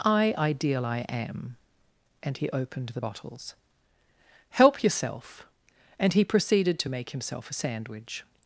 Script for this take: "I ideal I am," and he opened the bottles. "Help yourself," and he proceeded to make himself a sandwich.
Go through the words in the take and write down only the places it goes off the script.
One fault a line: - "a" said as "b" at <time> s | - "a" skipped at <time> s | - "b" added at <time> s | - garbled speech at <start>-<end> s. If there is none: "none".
none